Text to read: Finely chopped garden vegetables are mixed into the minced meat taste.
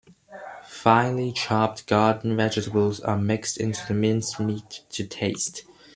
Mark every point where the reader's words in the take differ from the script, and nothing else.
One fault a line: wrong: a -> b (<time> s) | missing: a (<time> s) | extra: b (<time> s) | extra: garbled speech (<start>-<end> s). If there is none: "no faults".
extra: to (4.9 s)